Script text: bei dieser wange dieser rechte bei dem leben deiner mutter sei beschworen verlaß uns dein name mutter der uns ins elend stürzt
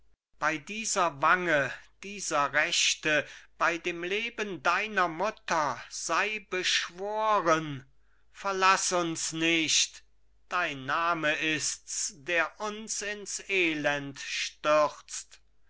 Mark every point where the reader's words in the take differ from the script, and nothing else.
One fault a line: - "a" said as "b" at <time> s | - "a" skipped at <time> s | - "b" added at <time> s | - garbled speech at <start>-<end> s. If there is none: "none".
- "nicht" added at 9.3 s
- "mutter" said as "ist's" at 11.3 s